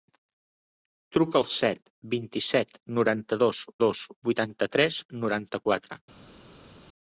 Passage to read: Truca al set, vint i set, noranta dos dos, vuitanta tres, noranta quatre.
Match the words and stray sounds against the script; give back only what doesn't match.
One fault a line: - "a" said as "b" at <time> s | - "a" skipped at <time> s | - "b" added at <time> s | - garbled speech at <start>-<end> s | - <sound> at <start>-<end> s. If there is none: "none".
none